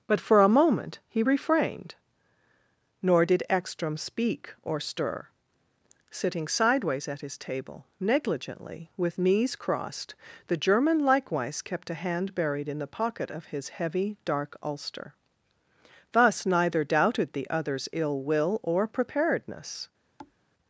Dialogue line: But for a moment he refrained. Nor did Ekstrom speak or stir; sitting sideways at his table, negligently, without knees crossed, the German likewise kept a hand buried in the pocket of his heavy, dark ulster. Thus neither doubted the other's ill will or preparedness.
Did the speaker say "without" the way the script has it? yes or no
no